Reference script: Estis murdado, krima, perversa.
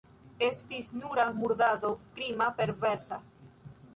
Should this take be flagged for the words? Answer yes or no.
yes